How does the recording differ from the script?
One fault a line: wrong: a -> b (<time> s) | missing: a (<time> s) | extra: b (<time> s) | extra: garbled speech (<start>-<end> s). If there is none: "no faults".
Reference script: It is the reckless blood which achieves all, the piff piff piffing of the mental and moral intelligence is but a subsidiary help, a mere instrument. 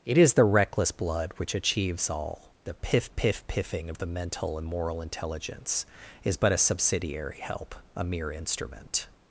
no faults